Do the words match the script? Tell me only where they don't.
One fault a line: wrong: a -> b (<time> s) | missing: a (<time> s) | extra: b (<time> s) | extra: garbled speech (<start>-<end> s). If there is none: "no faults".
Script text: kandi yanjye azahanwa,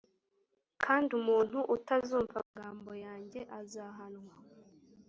extra: umuntu utazumva amagambo (1.2 s)